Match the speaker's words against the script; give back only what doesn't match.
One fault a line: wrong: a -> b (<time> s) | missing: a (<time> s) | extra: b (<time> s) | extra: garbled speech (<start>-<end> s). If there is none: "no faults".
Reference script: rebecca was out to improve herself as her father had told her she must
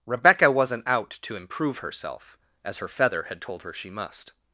wrong: was -> wasn't (0.5 s)
wrong: father -> feather (2.9 s)